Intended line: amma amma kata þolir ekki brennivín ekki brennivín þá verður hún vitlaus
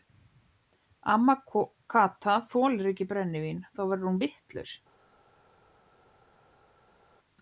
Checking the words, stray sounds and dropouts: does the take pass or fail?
fail